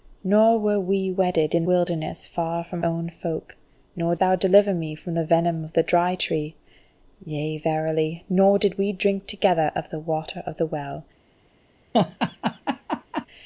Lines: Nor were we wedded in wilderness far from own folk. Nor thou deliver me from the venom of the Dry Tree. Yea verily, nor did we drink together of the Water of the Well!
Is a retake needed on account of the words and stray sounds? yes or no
yes